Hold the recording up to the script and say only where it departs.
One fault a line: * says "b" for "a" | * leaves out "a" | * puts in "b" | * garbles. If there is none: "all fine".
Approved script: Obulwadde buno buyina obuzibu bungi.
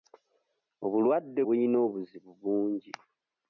* leaves out "buno"